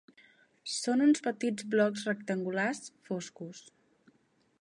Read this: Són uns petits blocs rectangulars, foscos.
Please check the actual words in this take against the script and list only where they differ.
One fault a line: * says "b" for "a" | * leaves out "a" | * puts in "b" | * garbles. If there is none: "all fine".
all fine